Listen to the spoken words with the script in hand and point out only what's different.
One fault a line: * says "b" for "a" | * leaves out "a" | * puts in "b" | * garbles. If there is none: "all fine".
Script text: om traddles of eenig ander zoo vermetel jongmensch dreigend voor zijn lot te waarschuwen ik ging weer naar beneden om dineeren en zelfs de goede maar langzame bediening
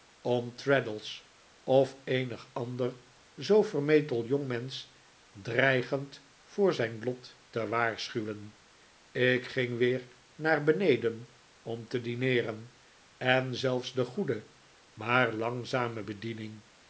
* puts in "te"